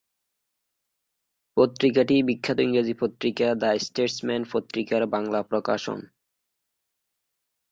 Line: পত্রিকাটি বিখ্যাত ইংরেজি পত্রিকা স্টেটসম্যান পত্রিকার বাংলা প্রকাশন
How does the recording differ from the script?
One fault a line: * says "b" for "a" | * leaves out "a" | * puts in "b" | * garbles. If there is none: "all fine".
* puts in "দ্য"